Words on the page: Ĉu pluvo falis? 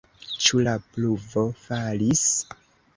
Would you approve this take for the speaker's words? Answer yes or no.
no